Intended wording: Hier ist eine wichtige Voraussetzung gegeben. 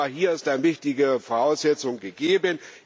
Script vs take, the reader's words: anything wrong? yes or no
no